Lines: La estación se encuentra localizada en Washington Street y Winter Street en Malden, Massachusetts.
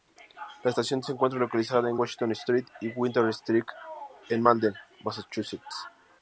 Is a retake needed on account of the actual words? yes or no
no